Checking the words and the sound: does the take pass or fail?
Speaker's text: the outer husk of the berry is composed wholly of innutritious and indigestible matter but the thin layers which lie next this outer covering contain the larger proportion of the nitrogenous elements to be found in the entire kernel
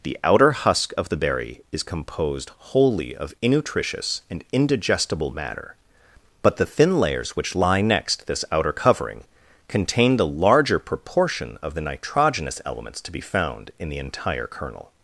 pass